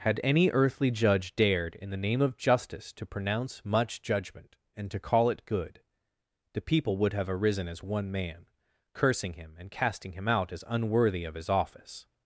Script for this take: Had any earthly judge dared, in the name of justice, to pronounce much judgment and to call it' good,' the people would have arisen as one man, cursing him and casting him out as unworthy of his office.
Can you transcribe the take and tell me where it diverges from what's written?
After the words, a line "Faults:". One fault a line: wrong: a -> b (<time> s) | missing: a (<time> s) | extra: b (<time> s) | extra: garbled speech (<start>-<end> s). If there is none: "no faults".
Had any earthly judge dared, in the name of justice, to pronounce much judgment and to call it' good,' the people would have arisen as one man, cursing him and casting him out as unworthy of his office.
Faults:
no faults